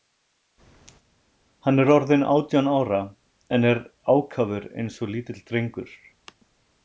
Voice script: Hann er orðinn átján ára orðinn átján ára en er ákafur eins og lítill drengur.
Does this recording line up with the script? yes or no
no